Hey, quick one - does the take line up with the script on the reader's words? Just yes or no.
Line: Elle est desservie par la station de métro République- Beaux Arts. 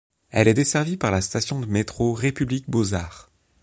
yes